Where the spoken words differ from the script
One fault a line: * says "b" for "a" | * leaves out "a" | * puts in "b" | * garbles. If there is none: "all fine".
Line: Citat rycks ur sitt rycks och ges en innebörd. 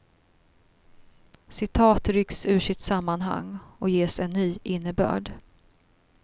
* says "sammanhang" for "rycks"
* puts in "ny"